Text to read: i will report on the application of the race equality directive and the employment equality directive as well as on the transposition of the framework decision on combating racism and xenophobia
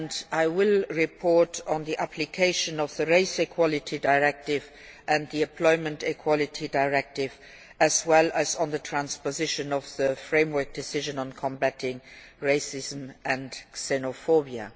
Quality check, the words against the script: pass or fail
pass